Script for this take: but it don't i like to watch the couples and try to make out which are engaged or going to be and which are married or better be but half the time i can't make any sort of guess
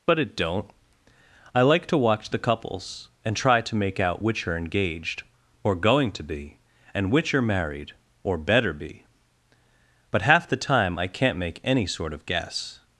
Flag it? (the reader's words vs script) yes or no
no